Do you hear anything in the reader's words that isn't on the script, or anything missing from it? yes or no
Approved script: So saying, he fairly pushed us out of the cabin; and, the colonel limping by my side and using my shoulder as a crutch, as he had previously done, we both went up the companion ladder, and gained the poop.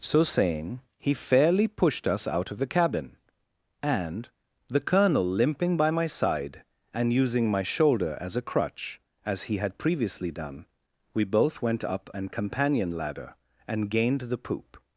yes